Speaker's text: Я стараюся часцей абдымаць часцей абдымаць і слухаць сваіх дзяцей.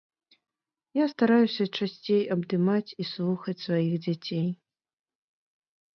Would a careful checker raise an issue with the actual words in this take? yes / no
yes